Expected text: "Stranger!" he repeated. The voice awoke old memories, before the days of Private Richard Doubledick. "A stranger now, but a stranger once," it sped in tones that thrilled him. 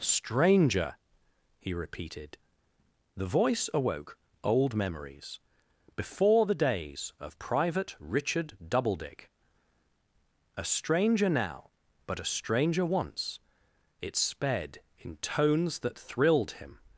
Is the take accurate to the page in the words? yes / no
yes